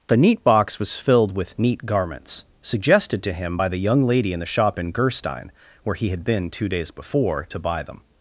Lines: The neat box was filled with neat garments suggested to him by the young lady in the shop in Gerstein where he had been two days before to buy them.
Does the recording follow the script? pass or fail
pass